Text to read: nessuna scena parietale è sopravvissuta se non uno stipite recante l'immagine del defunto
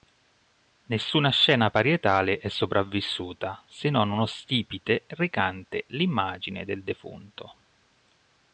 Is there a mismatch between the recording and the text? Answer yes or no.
no